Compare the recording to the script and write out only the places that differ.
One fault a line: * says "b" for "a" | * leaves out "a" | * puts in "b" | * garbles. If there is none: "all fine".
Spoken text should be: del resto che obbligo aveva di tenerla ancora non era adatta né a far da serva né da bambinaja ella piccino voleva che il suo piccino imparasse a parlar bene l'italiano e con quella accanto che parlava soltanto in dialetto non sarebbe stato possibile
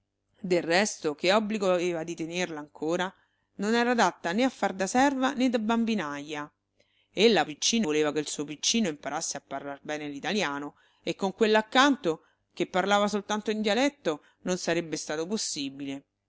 all fine